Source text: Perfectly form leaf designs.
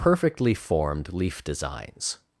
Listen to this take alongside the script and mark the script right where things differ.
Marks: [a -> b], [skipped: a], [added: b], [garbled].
Perfectly [form -> formed] leaf designs.